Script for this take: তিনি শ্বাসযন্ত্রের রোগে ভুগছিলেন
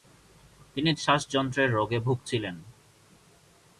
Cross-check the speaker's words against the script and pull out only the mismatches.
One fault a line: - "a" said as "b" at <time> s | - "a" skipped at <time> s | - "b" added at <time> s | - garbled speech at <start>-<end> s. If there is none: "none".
none